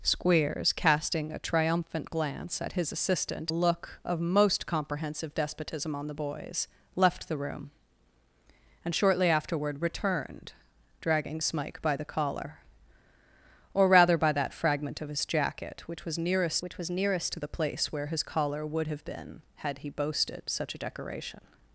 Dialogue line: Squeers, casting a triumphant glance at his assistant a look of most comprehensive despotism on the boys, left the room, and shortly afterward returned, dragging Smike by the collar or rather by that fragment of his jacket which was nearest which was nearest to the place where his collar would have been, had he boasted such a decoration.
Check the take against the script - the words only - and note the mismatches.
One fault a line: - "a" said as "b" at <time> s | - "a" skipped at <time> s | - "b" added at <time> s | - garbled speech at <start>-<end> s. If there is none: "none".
none